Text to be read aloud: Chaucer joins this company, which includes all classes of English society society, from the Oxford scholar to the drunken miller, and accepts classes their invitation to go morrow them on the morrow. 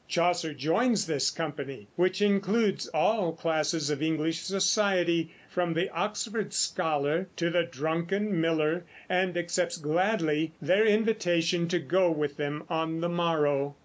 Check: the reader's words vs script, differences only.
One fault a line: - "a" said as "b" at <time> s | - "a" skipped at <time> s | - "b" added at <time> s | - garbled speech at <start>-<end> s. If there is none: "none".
- "society" skipped at 5.3 s
- "classes" said as "gladly" at 9.8 s
- "morrow" said as "with" at 12.1 s